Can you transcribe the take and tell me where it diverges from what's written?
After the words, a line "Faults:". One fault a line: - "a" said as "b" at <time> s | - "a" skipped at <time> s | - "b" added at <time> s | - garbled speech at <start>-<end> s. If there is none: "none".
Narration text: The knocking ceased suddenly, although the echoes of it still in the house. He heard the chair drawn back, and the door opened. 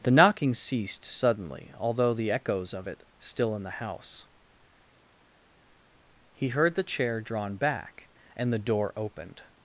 The knocking ceased suddenly, although the echoes of it still in the house. He heard the chair drawn back, and the door opened.
Faults:
none